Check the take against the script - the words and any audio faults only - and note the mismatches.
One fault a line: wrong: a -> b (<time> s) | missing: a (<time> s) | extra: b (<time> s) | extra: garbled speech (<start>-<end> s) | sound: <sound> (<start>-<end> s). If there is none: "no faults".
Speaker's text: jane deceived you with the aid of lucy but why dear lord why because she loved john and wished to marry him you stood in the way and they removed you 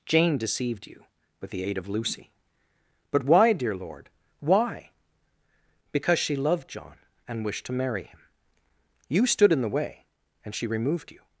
wrong: they -> she (10.6 s)